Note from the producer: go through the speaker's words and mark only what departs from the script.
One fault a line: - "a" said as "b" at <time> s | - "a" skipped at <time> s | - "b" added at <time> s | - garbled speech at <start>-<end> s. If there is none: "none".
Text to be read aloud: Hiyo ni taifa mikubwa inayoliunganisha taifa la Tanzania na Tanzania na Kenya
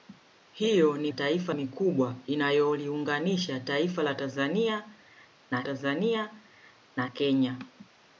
none